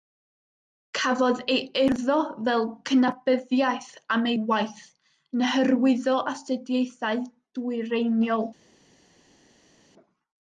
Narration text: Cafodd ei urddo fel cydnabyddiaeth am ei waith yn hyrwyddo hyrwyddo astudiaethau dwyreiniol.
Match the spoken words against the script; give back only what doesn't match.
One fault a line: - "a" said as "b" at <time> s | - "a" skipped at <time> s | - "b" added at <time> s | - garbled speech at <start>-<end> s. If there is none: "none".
- "hyrwyddo" skipped at 6.2 s